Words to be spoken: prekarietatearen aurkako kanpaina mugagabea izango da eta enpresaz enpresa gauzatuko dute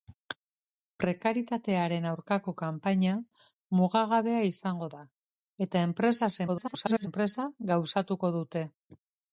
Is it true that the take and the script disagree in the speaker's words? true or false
true